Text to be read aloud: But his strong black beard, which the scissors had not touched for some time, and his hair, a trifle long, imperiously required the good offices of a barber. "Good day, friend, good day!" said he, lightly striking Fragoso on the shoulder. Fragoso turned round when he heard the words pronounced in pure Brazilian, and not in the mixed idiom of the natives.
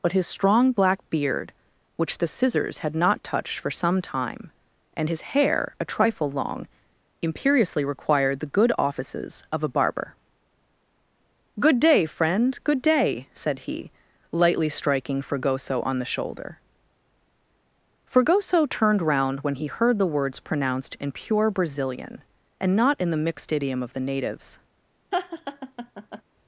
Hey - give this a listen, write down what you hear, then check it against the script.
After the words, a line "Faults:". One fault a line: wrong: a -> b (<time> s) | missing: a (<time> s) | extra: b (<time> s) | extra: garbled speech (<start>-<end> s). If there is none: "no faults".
But his strong black beard, which the scissors had not touched for some time, and his hair, a trifle long, imperiously required the good offices of a barber. "Good day, friend, good day!" said he, lightly striking Fragoso on the shoulder. Fragoso turned round when he heard the words pronounced in pure Brazilian, and not in the mixed idiom of the natives.
Faults:
no faults